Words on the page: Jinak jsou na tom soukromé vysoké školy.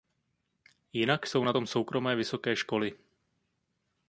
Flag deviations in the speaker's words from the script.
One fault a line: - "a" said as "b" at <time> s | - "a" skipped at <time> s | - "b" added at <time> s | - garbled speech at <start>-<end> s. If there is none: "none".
none